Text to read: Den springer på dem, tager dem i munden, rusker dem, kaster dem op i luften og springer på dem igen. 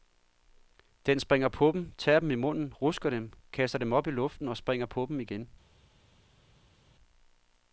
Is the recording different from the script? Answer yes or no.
no